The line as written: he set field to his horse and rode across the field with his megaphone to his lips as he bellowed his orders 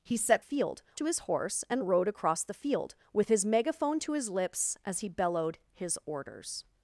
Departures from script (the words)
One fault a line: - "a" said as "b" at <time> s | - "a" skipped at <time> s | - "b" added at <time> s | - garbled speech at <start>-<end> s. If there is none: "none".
none